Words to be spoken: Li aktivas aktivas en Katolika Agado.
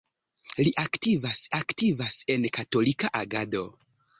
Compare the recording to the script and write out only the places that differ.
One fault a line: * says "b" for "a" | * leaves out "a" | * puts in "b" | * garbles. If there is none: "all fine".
all fine